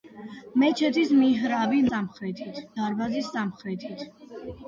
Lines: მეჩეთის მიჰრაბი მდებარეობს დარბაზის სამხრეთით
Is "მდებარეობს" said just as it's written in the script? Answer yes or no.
no